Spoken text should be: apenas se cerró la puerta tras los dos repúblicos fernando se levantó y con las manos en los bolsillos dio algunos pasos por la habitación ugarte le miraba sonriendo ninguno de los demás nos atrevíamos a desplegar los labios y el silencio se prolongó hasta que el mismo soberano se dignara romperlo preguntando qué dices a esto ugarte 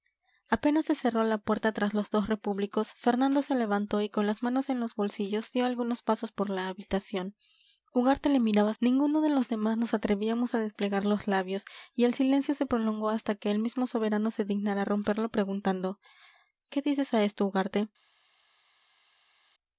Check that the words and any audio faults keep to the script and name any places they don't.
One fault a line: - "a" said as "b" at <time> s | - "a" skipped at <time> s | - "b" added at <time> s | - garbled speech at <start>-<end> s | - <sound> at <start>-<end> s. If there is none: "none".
- "sonriendo" skipped at 8.7 s